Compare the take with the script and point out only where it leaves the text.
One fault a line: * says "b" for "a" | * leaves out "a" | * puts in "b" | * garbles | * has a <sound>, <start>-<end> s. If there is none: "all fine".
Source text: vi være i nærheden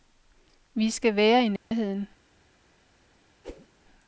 * puts in "skal"
* has a dropout, 1.6-1.7 s
* has a whoosh, 3.4-3.7 s